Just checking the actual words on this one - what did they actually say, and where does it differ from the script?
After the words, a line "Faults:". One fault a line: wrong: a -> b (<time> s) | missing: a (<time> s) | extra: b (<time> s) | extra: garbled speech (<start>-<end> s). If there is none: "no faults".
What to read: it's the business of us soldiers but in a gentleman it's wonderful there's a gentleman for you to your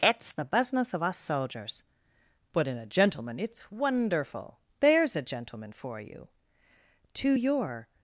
it's the business of us soldiers but in a gentleman it's wonderful there's a gentleman for you to your
Faults:
no faults